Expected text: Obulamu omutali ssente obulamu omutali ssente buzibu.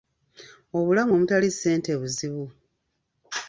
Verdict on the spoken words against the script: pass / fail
fail